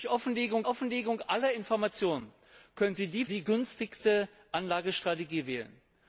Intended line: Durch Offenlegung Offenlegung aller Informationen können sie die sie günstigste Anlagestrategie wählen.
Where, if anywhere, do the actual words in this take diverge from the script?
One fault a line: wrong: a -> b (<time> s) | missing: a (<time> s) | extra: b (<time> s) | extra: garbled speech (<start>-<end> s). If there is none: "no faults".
no faults